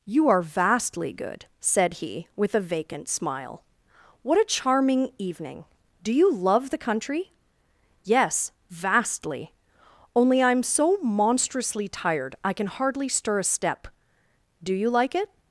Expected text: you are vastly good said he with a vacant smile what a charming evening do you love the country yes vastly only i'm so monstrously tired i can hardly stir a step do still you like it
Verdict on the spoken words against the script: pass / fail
fail